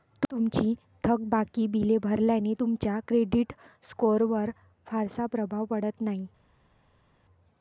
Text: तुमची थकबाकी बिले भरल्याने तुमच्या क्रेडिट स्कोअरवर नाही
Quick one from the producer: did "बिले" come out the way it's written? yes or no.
yes